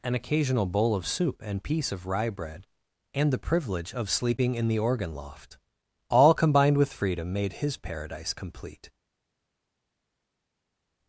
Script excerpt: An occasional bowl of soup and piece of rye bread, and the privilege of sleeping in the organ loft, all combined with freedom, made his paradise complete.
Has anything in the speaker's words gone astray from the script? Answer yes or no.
no